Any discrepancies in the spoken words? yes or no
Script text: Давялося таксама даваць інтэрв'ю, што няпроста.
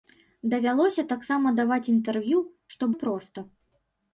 no